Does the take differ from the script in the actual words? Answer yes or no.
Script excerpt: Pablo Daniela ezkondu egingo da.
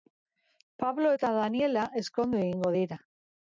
yes